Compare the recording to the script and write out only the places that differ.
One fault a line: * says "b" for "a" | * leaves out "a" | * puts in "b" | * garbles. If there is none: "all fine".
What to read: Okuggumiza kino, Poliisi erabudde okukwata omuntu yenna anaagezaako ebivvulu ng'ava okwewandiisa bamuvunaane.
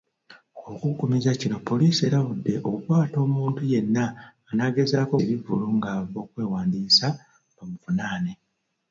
all fine